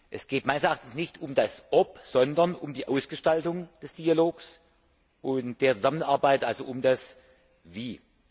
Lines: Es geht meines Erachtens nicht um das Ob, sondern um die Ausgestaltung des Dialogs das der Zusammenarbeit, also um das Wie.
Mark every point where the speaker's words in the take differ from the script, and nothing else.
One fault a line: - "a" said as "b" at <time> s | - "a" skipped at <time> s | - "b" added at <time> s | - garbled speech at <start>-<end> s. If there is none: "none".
- "das" said as "und" at 5.2 s